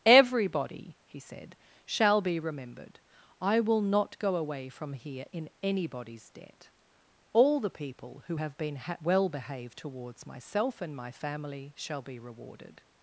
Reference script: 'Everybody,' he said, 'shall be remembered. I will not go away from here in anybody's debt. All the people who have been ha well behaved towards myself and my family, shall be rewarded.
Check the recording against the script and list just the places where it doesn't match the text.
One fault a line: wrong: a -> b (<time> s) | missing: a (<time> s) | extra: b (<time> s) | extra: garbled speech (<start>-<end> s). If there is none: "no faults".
no faults